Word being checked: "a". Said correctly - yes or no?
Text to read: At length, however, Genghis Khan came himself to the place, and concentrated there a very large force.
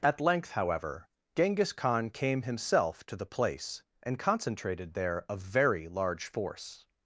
yes